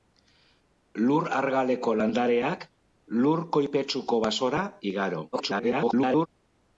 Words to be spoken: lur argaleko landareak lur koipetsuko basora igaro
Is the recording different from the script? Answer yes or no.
yes